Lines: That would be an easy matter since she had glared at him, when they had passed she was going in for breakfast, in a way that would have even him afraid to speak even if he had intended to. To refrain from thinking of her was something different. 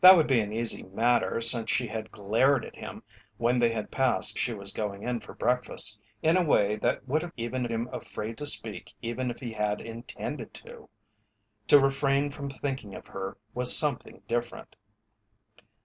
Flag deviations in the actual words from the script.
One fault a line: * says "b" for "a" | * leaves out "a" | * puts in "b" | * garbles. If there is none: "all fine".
all fine